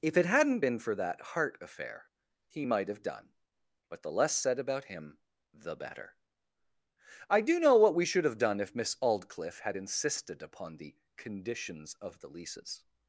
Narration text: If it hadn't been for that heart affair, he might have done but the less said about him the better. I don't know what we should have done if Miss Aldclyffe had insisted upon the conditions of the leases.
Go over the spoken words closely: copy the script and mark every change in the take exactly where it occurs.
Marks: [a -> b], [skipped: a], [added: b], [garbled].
If it hadn't been for that heart affair, he might have done but the less said about him the better. I [don't -> do] know what we should have done if Miss Aldclyffe had insisted upon the conditions of the leases.